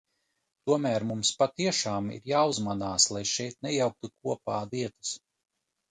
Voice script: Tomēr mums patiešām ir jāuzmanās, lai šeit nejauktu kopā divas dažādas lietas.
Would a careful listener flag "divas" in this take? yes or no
yes